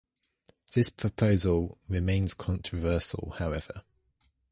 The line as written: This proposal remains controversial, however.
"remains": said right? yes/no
yes